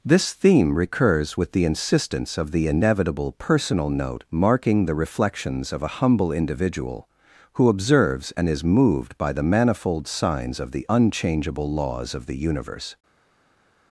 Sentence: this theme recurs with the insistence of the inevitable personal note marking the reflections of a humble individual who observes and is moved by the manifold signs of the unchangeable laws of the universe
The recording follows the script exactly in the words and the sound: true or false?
true